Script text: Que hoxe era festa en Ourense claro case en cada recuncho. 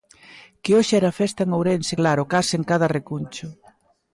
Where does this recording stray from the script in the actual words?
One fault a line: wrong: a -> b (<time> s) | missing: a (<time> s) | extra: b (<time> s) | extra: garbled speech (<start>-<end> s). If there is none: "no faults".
no faults